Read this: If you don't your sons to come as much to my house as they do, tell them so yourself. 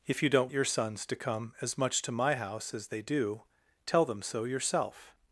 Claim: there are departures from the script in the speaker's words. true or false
false